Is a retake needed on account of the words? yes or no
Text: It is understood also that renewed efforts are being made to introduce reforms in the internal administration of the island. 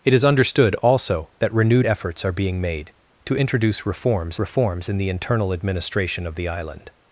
yes